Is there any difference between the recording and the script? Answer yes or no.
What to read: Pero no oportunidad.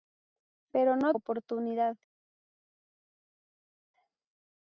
no